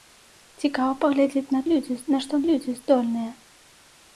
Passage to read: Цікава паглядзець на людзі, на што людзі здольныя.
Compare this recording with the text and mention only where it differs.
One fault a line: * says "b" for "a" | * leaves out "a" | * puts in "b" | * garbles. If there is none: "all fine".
all fine